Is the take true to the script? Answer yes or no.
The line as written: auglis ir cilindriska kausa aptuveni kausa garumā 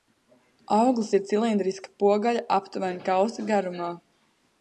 no